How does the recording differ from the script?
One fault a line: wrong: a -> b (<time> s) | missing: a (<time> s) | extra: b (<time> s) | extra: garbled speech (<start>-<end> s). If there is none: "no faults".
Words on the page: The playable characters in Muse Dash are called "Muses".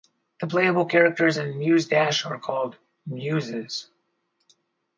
no faults